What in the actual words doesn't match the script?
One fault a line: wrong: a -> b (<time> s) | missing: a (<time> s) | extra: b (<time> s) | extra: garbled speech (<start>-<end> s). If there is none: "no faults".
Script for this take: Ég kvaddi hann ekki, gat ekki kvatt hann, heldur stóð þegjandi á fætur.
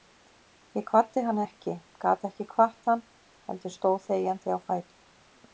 no faults